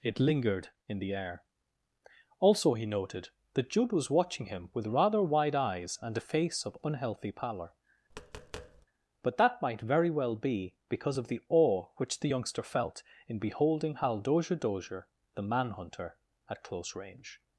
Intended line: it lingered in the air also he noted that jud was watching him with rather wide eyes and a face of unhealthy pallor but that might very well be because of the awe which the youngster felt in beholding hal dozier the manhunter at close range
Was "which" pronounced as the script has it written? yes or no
yes